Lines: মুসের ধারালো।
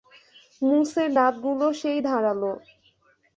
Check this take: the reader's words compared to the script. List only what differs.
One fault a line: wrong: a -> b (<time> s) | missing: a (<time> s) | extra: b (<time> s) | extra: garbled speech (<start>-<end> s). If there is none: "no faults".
extra: দাঁতগুলো সেই (1.1 s)